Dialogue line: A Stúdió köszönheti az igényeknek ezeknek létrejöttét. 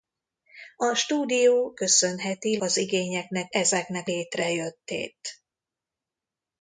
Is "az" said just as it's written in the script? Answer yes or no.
yes